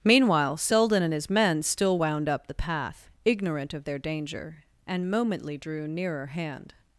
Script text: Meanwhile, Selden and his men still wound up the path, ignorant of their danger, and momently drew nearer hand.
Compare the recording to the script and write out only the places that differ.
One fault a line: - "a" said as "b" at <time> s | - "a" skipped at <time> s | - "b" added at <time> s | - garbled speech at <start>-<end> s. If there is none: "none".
none